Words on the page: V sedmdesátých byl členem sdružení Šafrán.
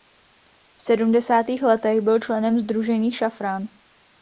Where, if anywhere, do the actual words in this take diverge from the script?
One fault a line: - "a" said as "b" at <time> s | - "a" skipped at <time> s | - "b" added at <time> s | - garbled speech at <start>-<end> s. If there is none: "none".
- "letech" added at 1.6 s